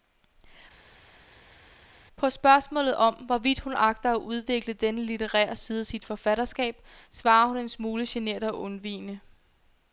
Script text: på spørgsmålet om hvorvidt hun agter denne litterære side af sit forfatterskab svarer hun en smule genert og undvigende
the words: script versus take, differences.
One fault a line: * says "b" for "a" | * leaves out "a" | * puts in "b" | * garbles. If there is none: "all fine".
* puts in "at udvikle"